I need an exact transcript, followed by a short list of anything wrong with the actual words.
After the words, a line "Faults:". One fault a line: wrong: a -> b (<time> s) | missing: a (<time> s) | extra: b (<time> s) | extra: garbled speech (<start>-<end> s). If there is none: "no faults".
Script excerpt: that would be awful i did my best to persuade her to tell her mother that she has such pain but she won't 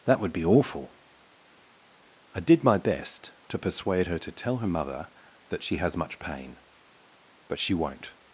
that would be awful i did my best to persuade her to tell her mother that she has much pain but she won't
Faults:
wrong: such -> much (6.0 s)